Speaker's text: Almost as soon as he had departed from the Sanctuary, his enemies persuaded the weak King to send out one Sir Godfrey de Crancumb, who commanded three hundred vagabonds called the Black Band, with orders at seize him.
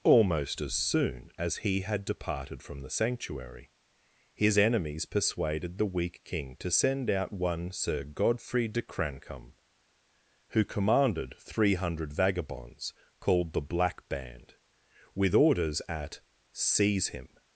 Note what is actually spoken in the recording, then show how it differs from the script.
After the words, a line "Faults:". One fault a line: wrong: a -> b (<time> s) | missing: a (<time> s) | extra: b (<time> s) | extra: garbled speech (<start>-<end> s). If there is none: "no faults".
Almost as soon as he had departed from the Sanctuary, his enemies persuaded the weak King to send out one Sir Godfrey de Crancumb, who commanded three hundred vagabonds called the Black Band, with orders at seize him.
Faults:
no faults